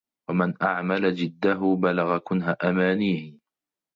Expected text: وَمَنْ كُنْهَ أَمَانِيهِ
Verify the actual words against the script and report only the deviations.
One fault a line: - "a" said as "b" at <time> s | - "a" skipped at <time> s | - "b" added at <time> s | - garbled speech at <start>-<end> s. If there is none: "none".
- "أَعْمَلَ جِدَّهُ بَلَغَ" added at 0.6 s